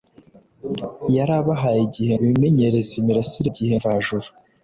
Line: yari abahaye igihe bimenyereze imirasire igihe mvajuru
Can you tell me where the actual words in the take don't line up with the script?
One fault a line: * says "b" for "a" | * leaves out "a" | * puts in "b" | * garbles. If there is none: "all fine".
all fine